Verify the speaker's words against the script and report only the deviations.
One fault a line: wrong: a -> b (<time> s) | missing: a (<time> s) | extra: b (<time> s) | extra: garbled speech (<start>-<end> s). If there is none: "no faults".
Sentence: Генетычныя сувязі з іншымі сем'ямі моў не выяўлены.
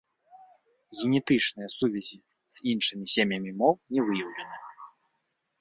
no faults